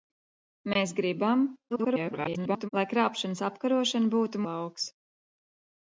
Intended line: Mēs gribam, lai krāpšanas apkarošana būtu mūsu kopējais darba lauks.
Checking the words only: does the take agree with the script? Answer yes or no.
no